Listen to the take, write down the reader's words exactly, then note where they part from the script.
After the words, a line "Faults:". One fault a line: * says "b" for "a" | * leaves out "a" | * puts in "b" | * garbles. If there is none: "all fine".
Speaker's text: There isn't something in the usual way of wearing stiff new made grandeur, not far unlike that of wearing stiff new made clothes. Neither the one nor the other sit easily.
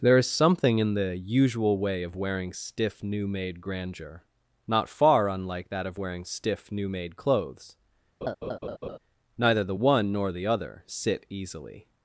There is something in the usual way of wearing stiff new made grandeur, not far unlike that of wearing stiff new made clothes. Neither the one nor the other sit easily.
Faults:
* says "is" for "isn't"